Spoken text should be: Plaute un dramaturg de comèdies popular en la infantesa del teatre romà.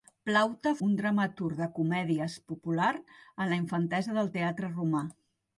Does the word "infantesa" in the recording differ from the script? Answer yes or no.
no